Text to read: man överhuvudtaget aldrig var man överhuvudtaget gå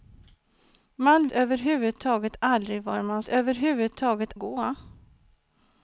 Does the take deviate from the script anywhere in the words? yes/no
no